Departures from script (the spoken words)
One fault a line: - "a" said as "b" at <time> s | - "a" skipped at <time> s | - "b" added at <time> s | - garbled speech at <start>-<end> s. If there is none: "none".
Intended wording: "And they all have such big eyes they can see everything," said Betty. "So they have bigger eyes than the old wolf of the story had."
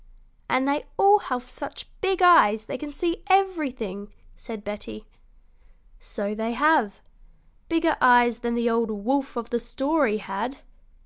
none